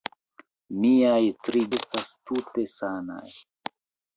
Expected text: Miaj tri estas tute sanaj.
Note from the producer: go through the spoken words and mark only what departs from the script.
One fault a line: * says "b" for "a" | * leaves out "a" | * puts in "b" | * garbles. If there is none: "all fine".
all fine